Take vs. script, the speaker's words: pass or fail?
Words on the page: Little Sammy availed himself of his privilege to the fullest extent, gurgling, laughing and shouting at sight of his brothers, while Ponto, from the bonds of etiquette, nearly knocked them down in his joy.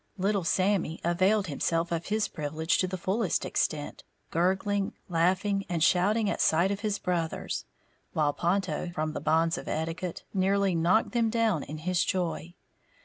pass